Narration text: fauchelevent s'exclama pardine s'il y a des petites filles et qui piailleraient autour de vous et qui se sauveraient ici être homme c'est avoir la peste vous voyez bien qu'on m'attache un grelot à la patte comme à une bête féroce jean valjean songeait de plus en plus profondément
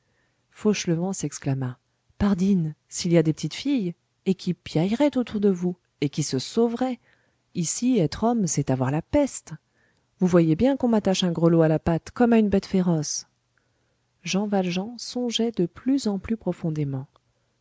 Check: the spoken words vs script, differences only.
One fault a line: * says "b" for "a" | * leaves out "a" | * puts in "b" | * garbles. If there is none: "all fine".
all fine